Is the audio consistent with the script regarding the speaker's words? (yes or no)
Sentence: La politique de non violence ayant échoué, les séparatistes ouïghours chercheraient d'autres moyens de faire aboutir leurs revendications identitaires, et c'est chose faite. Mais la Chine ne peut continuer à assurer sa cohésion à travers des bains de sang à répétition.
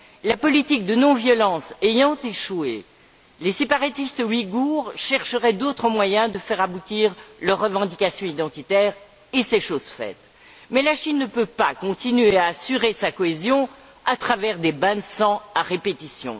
no